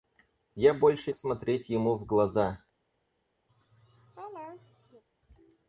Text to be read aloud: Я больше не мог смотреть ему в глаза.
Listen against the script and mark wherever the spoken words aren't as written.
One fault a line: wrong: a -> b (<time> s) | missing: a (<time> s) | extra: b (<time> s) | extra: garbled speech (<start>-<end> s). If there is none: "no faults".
missing: не мог (1.1 s)